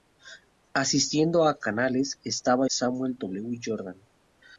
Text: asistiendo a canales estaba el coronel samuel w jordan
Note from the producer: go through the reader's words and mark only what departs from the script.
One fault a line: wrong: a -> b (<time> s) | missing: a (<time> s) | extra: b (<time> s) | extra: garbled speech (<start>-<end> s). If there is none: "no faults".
missing: el coronel (2.6 s)